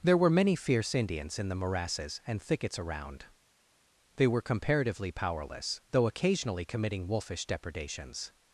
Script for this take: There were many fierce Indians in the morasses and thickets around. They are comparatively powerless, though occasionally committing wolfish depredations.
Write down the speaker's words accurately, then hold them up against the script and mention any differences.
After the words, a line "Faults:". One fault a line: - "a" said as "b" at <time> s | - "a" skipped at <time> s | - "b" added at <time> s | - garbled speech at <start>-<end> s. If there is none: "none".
There were many fierce Indians in the morasses and thickets around. They were comparatively powerless, though occasionally committing wolfish depredations.
Faults:
- "are" said as "were" at 4.3 s